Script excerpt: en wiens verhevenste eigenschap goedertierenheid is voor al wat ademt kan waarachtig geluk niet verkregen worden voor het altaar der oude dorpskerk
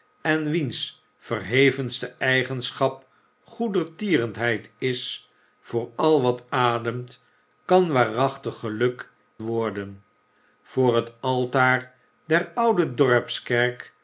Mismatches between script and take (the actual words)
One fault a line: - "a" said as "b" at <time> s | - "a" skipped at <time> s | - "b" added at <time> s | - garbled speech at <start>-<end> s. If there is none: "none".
- "niet verkregen" skipped at 9.1 s